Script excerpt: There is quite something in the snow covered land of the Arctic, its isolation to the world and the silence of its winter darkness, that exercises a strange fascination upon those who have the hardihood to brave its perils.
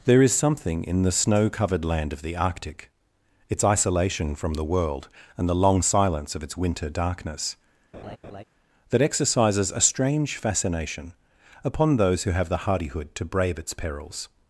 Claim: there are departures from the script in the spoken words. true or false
true